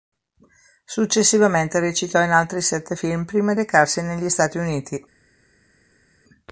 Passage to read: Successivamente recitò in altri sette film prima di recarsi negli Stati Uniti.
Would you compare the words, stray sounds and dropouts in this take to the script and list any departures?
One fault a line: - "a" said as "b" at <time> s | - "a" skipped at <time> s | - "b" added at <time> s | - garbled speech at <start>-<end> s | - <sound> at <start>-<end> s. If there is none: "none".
- "di" skipped at 3.5 s